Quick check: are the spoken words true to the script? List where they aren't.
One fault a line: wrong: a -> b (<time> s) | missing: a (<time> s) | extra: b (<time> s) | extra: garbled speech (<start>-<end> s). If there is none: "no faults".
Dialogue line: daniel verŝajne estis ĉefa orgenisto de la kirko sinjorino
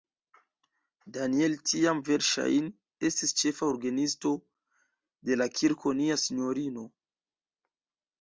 extra: tiam (1.7 s)
extra: nia (6.0 s)